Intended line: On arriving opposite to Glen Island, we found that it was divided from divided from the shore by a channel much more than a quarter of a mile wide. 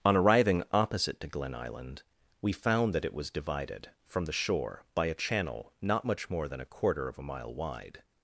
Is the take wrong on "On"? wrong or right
right